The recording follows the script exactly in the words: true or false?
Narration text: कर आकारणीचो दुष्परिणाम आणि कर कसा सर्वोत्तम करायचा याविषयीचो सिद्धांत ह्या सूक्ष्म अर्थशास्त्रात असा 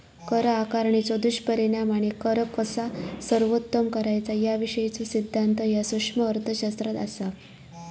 true